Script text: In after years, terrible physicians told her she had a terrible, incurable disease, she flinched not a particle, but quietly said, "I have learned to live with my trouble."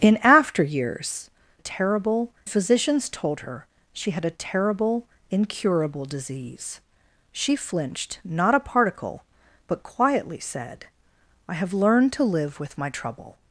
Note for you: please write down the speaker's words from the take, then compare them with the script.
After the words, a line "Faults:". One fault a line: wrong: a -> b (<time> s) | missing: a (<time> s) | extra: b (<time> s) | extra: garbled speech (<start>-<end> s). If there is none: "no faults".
In after years, terrible physicians told her she had a terrible, incurable disease, she flinched not a particle, but quietly said, "I have learned to live with my trouble."
Faults:
no faults